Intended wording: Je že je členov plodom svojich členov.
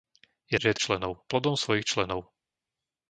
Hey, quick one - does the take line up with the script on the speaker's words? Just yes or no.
yes